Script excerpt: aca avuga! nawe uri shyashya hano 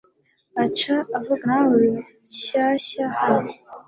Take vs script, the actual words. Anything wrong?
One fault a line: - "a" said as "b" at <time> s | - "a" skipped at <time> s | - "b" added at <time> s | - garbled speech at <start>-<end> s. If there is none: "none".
none